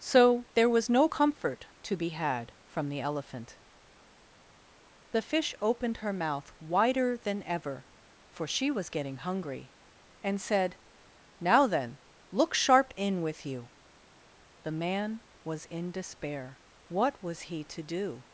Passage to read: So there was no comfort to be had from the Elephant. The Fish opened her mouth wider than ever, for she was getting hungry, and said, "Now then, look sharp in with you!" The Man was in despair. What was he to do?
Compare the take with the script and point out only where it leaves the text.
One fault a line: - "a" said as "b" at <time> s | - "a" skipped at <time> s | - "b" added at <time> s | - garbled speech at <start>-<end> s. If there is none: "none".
none